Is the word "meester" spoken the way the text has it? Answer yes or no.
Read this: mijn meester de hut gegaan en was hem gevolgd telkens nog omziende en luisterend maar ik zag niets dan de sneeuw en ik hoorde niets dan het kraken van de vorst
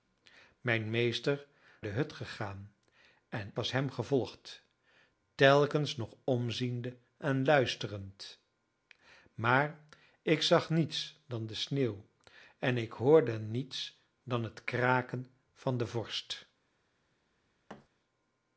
yes